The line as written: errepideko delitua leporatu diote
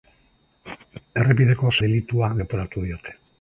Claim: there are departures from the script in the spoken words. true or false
false